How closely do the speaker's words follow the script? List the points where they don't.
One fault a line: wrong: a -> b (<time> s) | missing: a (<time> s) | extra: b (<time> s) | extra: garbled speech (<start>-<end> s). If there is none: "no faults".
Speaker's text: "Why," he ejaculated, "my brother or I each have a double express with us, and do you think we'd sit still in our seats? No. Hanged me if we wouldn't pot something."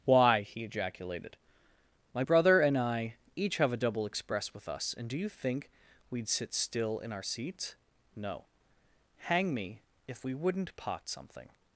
wrong: or -> and (2.6 s)
wrong: Hanged -> Hang (9.2 s)